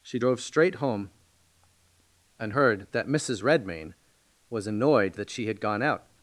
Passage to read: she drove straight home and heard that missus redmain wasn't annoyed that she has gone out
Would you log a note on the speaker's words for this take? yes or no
yes